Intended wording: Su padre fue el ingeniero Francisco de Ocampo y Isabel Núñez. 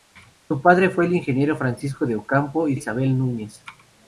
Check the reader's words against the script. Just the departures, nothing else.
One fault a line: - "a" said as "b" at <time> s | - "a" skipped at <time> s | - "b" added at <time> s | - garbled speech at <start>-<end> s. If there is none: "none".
none